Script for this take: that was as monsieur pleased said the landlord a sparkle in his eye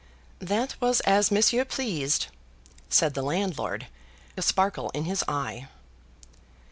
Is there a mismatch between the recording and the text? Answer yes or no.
no